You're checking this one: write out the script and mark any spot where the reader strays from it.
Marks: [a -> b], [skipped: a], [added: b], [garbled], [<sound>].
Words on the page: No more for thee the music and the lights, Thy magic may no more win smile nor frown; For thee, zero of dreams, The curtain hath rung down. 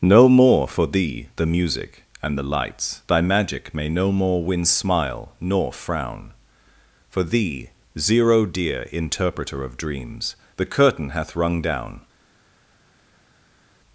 No more for thee the music and the lights, Thy magic may no more win smile nor frown; For thee, zero [added: dear interpreter] of dreams, The curtain hath rung down.